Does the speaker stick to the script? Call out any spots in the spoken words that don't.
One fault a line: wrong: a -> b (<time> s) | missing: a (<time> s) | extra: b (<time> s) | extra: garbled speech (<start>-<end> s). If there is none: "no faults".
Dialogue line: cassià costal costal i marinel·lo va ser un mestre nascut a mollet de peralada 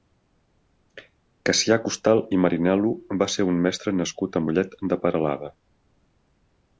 missing: costal (2.2 s)